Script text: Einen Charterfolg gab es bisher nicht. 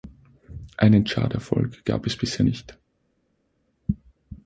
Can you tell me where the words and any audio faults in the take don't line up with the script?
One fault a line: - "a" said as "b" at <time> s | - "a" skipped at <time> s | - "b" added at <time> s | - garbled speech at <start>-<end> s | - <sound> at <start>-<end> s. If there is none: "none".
none